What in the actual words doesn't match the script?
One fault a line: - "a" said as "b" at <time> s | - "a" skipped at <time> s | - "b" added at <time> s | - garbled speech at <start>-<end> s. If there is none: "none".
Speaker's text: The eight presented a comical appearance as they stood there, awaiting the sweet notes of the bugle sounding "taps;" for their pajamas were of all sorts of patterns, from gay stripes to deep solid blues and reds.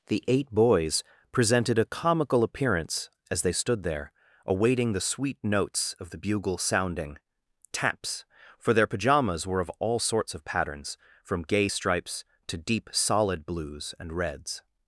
- "boys" added at 0.5 s